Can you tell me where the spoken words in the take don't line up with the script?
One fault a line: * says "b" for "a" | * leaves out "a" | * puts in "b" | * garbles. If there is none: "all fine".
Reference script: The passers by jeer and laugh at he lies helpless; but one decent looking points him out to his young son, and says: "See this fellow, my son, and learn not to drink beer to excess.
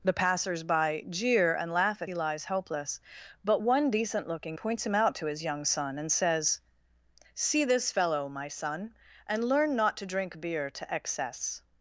all fine